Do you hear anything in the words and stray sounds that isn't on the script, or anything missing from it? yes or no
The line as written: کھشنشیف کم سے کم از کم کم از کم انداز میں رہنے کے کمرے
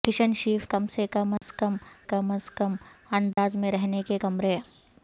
yes